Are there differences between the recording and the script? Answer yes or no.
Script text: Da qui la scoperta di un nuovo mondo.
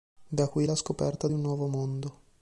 no